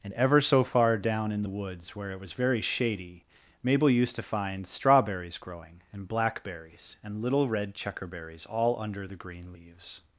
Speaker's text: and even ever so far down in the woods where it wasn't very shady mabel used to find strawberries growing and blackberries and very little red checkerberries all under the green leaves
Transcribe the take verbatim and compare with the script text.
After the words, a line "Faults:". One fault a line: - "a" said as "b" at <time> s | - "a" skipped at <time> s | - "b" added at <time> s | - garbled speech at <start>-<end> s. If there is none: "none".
and ever so far down in the woods where it was very shady mabel used to find strawberries growing and blackberries and little red checkerberries all under the green leaves
Faults:
- "even" skipped at 0.1 s
- "wasn't" said as "was" at 2.2 s
- "very" skipped at 7.2 s